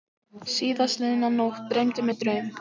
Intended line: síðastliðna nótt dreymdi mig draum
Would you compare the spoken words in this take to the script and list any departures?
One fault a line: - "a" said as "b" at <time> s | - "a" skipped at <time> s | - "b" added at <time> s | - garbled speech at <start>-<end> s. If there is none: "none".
none